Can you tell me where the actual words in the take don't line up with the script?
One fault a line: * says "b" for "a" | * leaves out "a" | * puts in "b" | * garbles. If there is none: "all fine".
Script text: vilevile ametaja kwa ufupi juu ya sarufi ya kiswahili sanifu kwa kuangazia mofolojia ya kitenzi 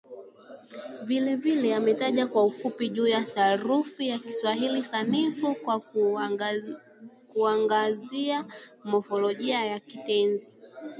all fine